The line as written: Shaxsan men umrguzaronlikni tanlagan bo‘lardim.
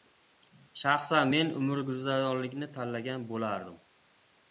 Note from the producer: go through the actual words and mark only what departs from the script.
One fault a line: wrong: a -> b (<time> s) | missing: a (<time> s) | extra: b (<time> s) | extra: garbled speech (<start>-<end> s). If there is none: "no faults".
no faults